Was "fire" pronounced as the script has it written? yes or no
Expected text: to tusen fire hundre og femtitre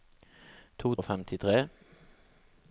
no